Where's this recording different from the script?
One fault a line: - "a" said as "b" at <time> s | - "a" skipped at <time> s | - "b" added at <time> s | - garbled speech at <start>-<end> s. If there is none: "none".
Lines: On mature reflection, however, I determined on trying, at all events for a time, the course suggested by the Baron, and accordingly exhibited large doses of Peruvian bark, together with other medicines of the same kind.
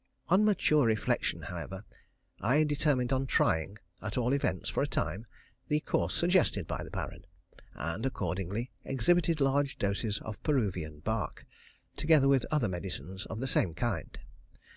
none